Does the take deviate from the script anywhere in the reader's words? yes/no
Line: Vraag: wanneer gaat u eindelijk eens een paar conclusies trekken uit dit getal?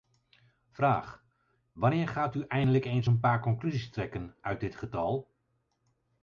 no